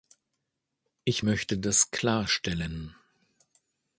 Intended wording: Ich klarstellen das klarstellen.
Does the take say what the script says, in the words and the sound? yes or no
no